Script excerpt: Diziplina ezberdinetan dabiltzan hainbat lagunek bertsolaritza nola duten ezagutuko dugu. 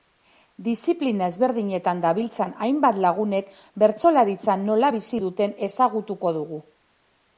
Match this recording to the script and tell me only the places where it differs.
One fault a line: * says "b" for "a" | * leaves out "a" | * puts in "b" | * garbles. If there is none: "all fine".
* puts in "bizi"